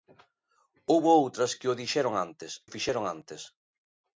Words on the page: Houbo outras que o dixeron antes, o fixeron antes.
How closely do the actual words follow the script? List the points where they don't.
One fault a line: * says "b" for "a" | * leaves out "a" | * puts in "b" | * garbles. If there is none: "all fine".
all fine